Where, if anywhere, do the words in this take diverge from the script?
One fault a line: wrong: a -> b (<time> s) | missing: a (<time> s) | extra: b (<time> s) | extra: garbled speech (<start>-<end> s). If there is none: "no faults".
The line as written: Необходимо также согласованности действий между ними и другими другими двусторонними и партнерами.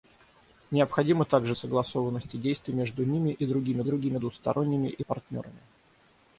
no faults